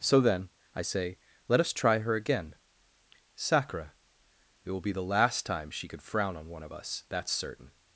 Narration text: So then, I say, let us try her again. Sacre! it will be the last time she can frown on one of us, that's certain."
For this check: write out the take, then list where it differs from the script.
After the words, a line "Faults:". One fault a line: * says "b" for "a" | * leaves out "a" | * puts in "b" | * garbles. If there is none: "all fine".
So then, I say, let us try her again. Sacre! it will be the last time she could frown on one of us, that's certain."
Faults:
* says "could" for "can"